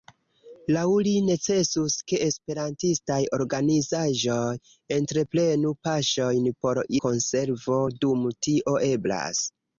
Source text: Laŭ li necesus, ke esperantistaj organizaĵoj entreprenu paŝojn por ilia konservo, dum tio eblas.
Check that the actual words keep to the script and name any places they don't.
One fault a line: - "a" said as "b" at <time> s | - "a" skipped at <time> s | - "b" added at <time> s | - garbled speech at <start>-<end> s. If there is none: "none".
- "ilia" skipped at 6.8 s